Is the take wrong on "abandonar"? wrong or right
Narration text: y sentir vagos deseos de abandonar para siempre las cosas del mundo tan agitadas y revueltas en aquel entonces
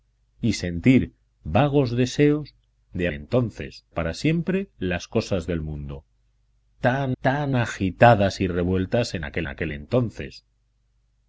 wrong